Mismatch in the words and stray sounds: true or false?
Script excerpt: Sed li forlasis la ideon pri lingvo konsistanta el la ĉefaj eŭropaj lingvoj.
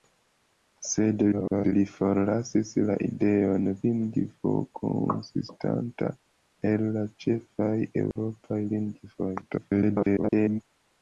true